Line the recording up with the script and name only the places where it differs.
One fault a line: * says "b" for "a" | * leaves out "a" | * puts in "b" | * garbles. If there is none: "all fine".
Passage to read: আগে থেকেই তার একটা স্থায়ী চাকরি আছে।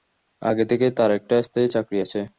all fine